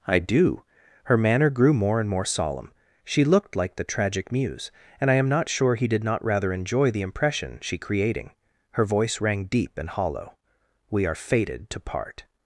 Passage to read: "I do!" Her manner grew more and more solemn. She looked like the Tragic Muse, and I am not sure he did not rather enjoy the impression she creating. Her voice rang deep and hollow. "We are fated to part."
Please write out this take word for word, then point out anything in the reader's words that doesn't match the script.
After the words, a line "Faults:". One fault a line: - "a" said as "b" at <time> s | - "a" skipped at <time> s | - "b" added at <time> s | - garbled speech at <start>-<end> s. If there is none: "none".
"I do!" Her manner grew more and more solemn. She looked like the Tragic Muse, and I am not sure he did not rather enjoy the impression she creating. Her voice rang deep and hollow. "We are fated to part."
Faults:
none